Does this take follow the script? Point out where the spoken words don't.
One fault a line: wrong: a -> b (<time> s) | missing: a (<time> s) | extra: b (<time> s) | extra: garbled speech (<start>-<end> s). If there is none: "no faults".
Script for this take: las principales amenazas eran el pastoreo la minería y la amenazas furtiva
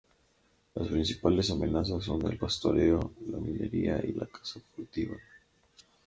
wrong: eran -> son (2.0 s)
wrong: amenazas -> caza (4.3 s)